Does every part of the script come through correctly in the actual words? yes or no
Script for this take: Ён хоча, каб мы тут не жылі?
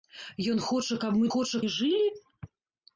no